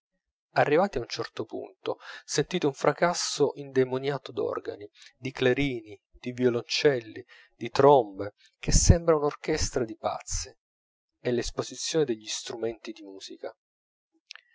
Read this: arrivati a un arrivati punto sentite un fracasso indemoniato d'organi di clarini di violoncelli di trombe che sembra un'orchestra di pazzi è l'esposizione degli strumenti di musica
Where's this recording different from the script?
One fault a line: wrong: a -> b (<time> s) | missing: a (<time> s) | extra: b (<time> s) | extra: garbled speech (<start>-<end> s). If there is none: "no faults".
wrong: arrivati -> certo (1.1 s)